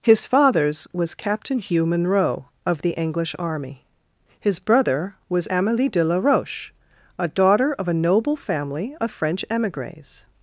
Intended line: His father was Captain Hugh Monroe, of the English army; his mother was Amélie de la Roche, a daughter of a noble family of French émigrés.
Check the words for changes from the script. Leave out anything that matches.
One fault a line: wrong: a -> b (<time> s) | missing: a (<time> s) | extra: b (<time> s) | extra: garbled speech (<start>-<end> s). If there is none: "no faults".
wrong: father -> fathers (0.2 s)
wrong: mother -> brother (4.6 s)